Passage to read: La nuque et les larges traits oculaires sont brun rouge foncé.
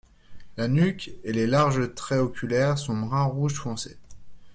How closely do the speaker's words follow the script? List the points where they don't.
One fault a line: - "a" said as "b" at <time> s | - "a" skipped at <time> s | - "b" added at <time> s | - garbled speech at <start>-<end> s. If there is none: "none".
none